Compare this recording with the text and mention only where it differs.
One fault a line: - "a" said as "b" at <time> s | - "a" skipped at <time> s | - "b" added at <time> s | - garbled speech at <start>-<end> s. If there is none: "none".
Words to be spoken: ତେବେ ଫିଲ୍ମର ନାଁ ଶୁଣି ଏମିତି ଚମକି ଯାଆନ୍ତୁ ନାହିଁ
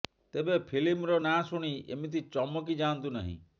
none